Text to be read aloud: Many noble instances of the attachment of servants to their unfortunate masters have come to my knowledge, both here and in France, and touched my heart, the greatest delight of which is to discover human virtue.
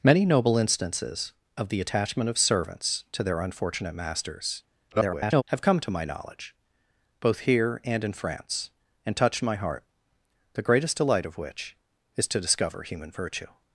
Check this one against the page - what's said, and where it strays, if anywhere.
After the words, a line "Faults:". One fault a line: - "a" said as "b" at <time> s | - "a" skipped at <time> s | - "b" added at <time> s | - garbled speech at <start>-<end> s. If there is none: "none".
Many noble instances of the attachment of servants to their unfortunate masters [garbled] have come to my knowledge, both here and in France, and touched my heart, the greatest delight of which is to discover human virtue.
Faults:
- garbled speech at 4.9-5.4 s